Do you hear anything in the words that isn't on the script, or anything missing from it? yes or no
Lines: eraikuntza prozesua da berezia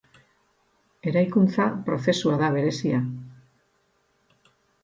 no